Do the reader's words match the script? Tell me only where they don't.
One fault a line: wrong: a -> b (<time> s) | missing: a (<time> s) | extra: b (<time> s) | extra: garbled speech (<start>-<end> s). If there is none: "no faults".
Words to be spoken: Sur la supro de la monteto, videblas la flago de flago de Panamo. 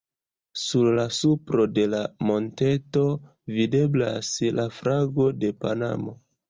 missing: flago de (5.6 s)